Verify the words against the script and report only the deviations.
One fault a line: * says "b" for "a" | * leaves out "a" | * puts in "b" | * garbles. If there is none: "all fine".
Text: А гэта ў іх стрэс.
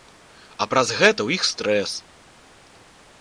* puts in "праз"